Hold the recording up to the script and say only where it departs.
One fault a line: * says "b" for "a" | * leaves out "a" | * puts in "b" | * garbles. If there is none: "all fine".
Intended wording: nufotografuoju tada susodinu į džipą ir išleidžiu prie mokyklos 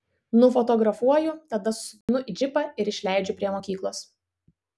all fine